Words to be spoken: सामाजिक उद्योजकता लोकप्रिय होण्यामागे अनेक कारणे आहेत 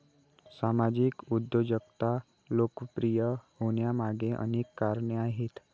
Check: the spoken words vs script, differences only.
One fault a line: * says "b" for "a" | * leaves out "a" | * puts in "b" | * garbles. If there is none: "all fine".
all fine